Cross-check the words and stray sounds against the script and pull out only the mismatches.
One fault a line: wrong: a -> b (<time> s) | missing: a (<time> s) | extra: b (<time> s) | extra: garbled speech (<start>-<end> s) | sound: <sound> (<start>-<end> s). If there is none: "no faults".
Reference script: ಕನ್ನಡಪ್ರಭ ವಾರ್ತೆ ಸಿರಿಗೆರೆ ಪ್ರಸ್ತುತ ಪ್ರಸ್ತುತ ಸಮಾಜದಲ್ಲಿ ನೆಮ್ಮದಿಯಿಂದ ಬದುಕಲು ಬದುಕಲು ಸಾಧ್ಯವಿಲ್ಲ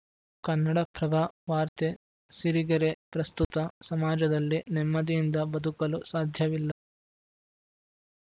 missing: ಪ್ರಸ್ತುತ (3.6 s)
missing: ಬದುಕಲು (6.0 s)